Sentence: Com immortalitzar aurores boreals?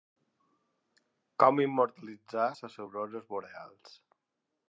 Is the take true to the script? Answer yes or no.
no